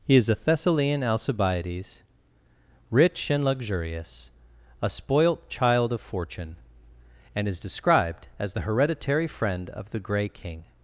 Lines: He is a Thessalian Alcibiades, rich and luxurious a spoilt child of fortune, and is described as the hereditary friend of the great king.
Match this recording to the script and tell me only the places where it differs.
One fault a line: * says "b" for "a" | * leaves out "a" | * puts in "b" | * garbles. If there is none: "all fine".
* says "grey" for "great"